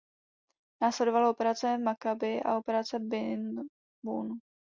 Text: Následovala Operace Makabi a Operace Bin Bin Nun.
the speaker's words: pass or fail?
fail